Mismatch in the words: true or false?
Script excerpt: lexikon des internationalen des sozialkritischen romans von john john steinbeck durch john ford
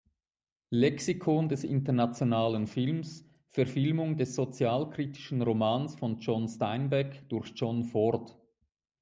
true